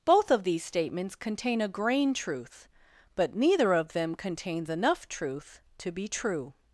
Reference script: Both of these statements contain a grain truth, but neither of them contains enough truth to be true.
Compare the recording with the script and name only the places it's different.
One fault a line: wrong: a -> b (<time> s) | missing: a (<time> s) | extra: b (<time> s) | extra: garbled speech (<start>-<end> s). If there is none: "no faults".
no faults